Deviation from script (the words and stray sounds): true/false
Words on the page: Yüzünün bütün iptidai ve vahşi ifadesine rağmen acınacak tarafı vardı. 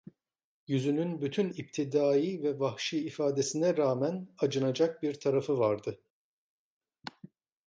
true